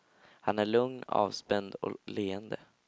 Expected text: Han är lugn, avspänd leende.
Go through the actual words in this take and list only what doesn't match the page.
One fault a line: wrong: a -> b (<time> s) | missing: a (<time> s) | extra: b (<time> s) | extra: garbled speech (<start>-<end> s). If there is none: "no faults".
no faults